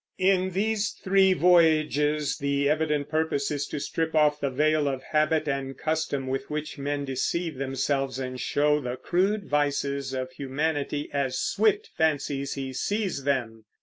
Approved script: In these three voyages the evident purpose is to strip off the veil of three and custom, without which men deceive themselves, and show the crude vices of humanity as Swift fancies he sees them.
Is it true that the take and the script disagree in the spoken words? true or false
true